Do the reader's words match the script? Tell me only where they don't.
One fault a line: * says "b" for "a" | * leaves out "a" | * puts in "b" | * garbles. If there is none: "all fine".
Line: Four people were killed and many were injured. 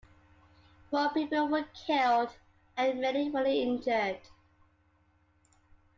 all fine